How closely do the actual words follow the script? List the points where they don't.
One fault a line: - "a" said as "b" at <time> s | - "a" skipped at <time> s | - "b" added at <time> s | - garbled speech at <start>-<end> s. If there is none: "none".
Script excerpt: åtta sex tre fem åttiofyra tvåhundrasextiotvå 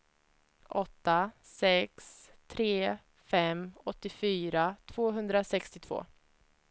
none